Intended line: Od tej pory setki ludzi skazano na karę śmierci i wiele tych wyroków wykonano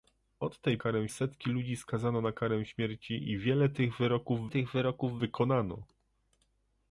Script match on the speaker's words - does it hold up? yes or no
no